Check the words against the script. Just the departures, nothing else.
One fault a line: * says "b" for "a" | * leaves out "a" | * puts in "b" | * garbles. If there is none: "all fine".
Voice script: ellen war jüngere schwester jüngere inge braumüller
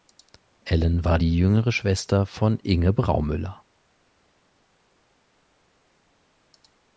* puts in "die"
* says "von" for "jüngere"